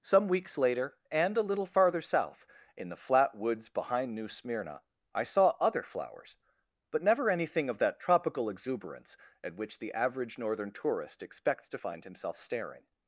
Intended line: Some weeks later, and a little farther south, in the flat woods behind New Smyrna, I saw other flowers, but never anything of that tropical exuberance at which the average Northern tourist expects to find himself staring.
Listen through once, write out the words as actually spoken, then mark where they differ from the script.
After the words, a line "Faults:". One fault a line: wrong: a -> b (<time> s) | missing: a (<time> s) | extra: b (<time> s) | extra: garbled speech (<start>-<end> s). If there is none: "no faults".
Some weeks later, and a little farther south, in the flat woods behind New Smyrna, I saw other flowers, but never anything of that tropical exuberance at which the average Northern tourist expects to find himself staring.
Faults:
no faults